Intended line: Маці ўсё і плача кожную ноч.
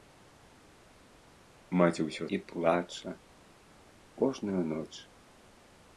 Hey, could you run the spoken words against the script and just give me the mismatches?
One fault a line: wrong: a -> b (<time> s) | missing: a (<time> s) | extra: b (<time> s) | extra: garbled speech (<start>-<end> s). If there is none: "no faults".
no faults